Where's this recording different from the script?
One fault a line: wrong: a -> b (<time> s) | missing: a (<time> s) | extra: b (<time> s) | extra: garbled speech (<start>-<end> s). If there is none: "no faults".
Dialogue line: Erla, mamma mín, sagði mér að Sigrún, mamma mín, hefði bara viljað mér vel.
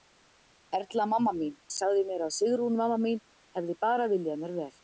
no faults